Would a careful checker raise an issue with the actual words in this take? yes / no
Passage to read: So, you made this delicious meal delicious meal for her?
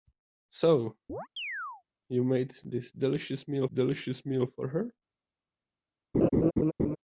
no